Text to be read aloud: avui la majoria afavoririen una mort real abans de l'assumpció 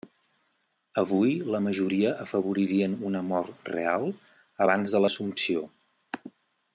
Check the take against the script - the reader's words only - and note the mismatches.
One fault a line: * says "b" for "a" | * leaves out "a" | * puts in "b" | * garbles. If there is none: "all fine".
all fine